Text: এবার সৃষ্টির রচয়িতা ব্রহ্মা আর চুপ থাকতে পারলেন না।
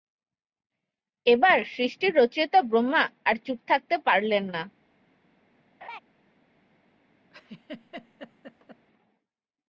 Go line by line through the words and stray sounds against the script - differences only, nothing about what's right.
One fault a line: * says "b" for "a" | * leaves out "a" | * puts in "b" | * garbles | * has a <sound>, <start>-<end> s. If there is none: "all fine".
* has a laugh, 5.8-6.0 s
* has a laugh, 7.3-8.9 s